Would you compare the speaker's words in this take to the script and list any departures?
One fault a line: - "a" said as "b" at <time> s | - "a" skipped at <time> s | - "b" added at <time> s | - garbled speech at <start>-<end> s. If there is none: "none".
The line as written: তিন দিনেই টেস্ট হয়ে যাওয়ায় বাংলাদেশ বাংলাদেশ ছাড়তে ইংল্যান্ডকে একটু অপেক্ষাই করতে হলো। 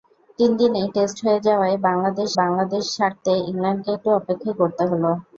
none